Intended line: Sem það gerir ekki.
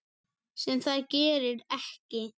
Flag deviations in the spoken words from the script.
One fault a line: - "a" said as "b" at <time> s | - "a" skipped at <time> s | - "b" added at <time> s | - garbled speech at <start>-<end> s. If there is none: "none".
none